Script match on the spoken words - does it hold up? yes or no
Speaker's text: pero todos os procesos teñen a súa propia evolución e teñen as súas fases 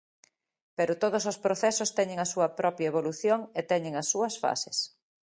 yes